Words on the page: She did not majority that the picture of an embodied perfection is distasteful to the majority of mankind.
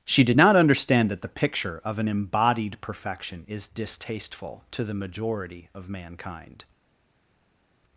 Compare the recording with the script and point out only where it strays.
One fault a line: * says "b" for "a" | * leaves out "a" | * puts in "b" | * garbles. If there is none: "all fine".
* says "understand" for "majority"